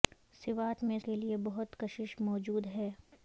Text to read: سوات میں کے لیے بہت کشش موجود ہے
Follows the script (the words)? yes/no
yes